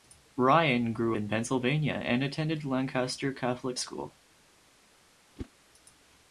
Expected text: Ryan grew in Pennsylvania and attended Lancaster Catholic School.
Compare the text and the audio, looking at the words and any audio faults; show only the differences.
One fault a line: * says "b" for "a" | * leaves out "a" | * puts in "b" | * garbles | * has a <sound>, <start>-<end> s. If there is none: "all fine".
* has a whoosh, 5.4-5.5 s